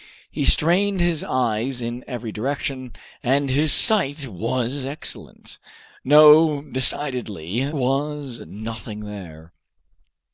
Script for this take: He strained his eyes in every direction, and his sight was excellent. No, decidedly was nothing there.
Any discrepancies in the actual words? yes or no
no